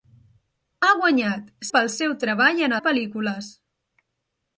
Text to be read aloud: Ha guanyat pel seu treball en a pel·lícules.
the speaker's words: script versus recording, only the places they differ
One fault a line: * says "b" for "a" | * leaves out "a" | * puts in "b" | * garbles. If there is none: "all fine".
all fine